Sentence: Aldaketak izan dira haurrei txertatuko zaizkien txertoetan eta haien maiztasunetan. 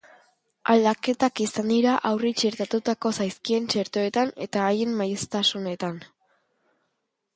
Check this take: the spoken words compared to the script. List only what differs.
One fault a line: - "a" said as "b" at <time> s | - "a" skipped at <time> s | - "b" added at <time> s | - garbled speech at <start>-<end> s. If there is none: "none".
none